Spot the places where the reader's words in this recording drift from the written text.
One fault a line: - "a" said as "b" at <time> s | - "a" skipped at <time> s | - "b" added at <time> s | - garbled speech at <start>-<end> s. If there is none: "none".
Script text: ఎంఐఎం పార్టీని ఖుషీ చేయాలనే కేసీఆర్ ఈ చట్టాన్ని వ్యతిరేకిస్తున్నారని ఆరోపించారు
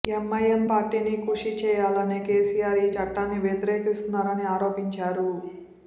none